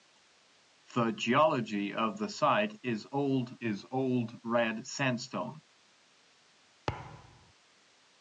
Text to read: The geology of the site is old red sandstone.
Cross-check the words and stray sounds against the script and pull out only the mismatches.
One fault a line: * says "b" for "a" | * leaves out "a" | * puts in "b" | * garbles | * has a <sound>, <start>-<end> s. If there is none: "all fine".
* puts in "is old"
* has a thud, 6.9-7.5 s